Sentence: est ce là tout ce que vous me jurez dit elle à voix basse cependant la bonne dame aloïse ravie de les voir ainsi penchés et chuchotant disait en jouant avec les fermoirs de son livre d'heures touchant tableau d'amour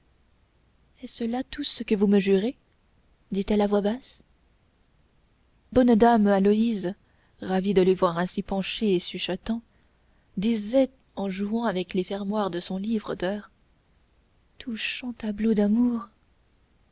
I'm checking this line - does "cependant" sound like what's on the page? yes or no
no